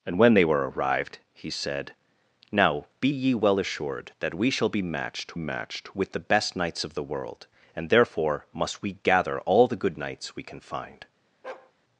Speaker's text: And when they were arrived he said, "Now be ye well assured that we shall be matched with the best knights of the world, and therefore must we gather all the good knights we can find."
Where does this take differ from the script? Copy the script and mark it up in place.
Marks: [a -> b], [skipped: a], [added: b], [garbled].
And when they were arrived he said, "Now be ye well assured that we shall be matched [added: matched] with the best knights of the world, and therefore must we gather all the good knights we can find."